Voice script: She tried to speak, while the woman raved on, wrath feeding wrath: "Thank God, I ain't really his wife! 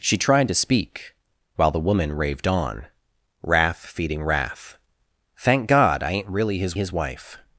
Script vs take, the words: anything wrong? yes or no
yes